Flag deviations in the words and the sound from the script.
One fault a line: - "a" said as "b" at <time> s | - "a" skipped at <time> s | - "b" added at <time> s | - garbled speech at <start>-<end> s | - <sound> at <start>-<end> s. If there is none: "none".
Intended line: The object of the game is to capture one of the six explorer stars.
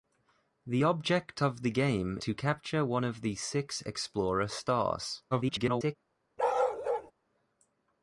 - "is" skipped at 2.2 s
- garbled speech at 5.3-6.0 s
- bark at 6.4-7.1 s